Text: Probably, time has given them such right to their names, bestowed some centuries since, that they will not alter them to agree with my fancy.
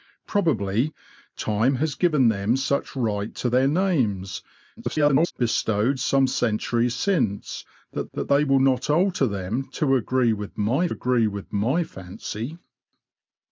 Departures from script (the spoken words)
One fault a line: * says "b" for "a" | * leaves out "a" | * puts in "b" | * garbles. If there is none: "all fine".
* garbles
* puts in "that"
* puts in "agree with my"